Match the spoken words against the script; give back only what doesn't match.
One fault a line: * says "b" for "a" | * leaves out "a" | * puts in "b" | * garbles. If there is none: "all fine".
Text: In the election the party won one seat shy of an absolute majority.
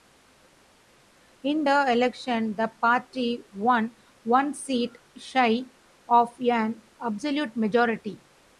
all fine